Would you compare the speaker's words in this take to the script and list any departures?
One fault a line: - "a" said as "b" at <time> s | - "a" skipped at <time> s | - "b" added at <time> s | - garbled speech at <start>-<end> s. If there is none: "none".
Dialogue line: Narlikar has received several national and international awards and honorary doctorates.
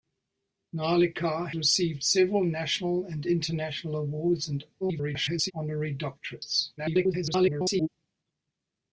- "has" skipped at 1.5 s
- garbled speech at 4.8-5.5 s
- garbled speech at 6.8-7.9 s